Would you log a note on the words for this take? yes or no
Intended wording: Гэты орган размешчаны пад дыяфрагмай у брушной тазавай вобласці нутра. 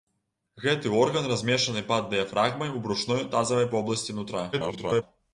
yes